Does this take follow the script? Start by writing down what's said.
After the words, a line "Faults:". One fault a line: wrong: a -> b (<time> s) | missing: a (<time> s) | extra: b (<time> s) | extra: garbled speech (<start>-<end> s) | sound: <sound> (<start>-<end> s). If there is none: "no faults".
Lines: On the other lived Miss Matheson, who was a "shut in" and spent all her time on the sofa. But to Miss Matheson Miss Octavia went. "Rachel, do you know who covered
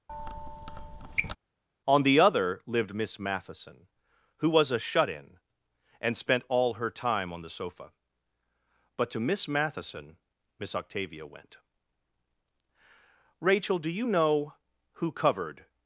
On the other lived Miss Matheson, who was a "shut in" and spent all her time on the sofa. But to Miss Matheson Miss Octavia went. "Rachel, do you know who covered
Faults:
sound: squeak (0.1-1.4 s)